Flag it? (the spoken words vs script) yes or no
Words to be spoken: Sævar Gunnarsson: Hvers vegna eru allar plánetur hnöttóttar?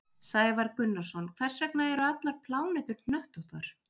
no